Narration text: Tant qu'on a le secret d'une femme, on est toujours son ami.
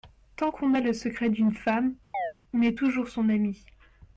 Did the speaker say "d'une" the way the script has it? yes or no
yes